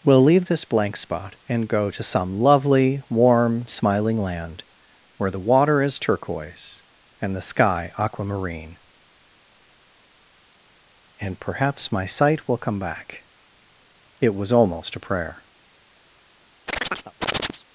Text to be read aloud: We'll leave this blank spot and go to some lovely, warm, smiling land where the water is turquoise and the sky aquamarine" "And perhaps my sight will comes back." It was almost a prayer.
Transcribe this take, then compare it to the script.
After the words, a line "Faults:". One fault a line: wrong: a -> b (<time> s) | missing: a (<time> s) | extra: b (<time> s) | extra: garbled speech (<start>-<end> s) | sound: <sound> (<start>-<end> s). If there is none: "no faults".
We'll leave this blank spot and go to some lovely, warm, smiling land where the water is turquoise and the sky aquamarine" "And perhaps my sight will come back." It was almost a prayer.
Faults:
wrong: comes -> come (12.6 s)
sound: chirp (16.7-17.6 s)